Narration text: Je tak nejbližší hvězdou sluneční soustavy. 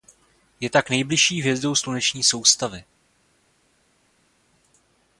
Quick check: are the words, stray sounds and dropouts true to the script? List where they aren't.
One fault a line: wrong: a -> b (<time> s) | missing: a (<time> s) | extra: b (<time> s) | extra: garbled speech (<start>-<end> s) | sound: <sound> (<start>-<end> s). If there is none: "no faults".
no faults